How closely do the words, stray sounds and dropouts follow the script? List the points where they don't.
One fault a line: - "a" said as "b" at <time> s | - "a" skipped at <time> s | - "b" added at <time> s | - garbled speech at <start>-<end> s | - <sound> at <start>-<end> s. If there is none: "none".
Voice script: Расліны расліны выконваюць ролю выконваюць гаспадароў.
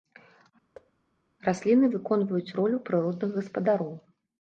- thud at 0.7-0.9 s
- "расліны" skipped at 1.9 s
- "выконваюць" said as "прыродных" at 2.9 s